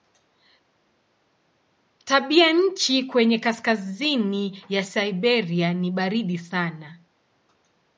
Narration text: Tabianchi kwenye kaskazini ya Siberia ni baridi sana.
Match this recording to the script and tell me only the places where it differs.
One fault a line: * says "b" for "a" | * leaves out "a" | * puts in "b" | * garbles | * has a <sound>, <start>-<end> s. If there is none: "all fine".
all fine